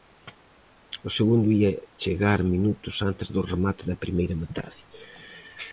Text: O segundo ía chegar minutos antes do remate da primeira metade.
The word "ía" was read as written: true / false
true